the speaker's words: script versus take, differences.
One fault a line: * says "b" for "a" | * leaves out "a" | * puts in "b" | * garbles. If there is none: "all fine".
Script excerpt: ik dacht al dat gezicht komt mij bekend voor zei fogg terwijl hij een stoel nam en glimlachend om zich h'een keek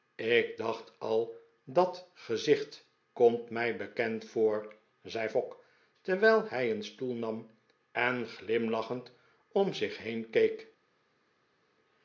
all fine